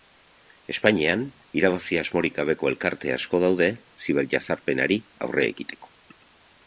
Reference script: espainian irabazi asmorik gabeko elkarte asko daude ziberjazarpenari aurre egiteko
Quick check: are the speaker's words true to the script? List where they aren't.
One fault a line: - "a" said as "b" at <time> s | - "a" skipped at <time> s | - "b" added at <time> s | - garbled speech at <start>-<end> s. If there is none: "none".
none